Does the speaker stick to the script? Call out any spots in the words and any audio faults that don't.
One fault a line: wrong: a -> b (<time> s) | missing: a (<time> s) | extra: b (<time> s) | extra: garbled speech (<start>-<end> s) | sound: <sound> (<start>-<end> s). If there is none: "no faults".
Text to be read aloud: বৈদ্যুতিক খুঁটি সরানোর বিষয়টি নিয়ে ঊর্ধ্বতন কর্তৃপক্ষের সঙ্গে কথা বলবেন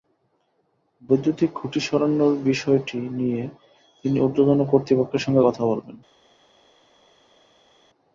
extra: তিনি (4.1 s)